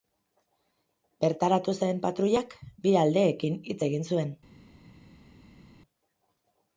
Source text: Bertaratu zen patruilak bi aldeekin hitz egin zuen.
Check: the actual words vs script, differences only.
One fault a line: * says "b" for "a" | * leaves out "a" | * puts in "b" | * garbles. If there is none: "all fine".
all fine